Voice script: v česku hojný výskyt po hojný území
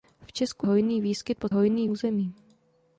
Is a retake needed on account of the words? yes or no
no